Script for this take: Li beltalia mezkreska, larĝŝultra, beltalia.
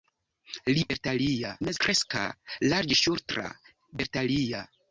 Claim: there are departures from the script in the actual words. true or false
false